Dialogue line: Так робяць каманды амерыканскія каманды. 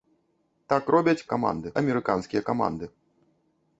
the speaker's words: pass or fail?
pass